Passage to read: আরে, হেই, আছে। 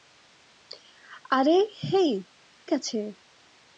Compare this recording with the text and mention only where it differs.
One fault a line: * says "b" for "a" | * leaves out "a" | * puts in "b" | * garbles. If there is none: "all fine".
all fine